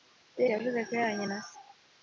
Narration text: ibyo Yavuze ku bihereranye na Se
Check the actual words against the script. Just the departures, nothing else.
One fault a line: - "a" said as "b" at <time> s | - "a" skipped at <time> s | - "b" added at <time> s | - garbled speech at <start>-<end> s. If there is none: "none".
none